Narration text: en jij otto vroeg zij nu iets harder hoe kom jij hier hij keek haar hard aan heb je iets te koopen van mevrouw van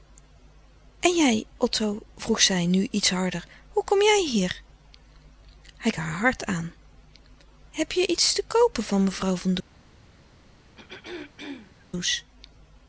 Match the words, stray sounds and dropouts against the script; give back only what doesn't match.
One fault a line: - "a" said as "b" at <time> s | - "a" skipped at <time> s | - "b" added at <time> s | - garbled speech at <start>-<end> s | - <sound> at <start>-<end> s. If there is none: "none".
- "keek" skipped at 5.9 s
- throat clearing at 10.8-11.9 s